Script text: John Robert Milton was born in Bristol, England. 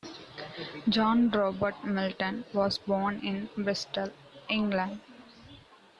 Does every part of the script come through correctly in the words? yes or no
yes